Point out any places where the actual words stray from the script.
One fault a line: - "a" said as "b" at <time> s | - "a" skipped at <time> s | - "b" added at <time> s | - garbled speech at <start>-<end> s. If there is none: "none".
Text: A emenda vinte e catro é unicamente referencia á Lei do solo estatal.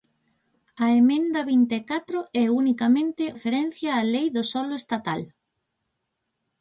none